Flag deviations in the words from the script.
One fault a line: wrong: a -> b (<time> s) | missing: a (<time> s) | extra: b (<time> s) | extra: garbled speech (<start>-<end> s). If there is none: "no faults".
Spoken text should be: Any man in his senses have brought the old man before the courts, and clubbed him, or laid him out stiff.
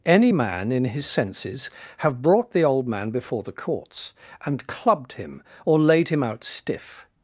no faults